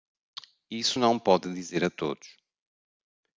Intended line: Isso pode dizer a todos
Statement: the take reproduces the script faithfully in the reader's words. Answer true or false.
false